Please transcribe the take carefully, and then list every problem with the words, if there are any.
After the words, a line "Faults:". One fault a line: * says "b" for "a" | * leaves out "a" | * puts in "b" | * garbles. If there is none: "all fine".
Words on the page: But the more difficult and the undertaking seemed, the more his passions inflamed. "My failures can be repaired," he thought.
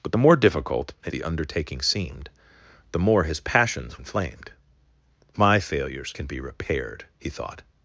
But the more difficult and the undertaking seemed, the more his passions inflamed. "My failures can be repaired," he thought.
Faults:
all fine